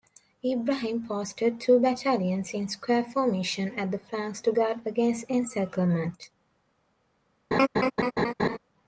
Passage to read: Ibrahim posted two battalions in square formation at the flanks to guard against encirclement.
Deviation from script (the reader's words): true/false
false